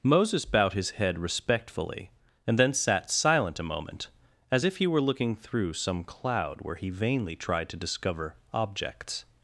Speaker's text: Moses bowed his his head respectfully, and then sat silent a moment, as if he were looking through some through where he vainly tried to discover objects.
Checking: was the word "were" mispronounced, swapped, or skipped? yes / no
no